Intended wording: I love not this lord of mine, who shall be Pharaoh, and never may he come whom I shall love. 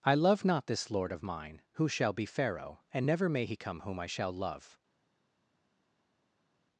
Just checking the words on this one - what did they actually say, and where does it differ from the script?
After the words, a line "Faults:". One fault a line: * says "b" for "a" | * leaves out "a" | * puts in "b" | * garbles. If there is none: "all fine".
I love not this lord of mine, who shall be Pharaoh, and never may he come whom I shall love.
Faults:
all fine